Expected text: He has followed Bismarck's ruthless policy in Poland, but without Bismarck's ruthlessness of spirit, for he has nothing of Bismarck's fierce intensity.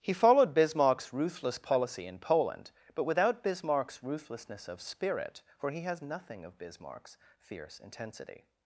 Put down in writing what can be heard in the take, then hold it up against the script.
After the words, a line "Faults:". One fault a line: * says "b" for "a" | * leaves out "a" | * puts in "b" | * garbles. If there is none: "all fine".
He followed Bismarck's ruthless policy in Poland, but without Bismarck's ruthlessness of spirit, for he has nothing of Bismarck's fierce intensity.
Faults:
* leaves out "has"